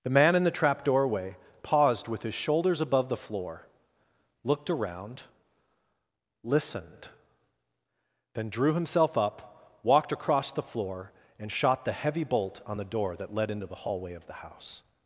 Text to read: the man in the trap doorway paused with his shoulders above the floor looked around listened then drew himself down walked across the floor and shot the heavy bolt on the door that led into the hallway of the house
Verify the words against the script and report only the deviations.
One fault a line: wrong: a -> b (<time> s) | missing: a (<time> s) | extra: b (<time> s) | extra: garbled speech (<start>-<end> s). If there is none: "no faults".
wrong: down -> up (9.2 s)